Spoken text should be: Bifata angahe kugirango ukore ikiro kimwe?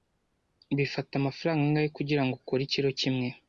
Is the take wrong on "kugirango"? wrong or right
right